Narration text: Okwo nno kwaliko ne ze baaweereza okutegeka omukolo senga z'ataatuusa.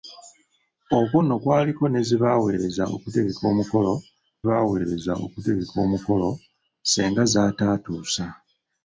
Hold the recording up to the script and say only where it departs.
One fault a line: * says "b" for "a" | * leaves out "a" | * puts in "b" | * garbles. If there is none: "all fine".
* puts in "baaweereza okutegeka omukolo"